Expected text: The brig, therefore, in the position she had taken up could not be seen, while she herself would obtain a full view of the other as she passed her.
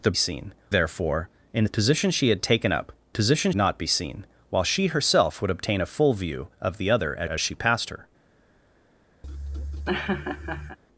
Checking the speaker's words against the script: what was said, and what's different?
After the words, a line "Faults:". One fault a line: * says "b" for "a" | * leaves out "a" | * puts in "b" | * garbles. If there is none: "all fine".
The seen, therefore, in the position she had taken up position not be seen, while she herself would obtain a full view of the other as as she passed her.
Faults:
* says "seen" for "brig"
* says "position" for "could"
* puts in "as"